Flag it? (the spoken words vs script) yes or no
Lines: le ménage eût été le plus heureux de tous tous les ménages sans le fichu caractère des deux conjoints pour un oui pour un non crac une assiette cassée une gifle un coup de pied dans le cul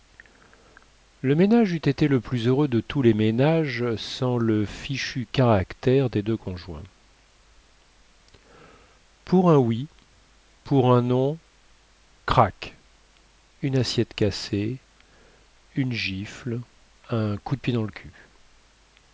yes